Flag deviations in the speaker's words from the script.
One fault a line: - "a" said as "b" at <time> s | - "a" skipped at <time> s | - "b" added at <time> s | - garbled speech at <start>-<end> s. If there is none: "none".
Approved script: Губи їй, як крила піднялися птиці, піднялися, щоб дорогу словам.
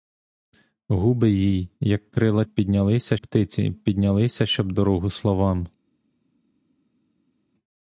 none